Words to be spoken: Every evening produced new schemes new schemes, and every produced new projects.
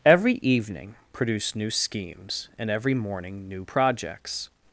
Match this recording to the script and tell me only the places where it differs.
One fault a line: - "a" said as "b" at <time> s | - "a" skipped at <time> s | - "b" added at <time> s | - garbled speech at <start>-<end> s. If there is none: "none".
- "new schemes" skipped at 2.5 s
- "produced" said as "morning" at 3.0 s